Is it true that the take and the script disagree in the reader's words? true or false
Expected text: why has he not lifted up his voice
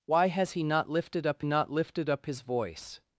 true